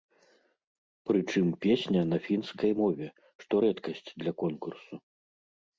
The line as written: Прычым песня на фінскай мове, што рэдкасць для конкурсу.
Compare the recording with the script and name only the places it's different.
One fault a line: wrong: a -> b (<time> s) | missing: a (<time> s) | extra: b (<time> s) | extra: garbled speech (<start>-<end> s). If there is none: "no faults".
no faults